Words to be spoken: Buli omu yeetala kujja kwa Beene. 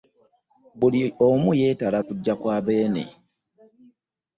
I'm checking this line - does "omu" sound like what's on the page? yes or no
yes